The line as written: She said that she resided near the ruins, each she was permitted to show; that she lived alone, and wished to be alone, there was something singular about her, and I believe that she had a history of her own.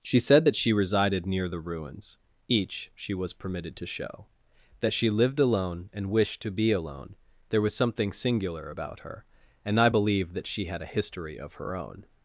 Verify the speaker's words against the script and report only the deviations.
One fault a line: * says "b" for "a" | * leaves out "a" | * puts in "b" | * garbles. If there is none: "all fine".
all fine